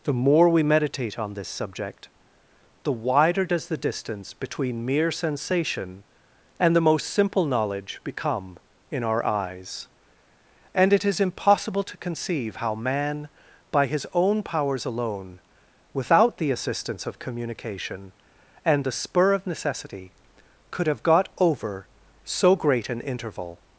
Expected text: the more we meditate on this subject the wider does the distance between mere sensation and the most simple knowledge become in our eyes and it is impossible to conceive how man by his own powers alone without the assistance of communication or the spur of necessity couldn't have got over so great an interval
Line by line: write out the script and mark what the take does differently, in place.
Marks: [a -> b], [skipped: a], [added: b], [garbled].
the more we meditate on this subject the wider does the distance between mere sensation and the most simple knowledge become in our eyes and it is impossible to conceive how man by his own powers alone without the assistance of communication [or -> and] the spur of necessity [couldn't -> could] have got over so great an interval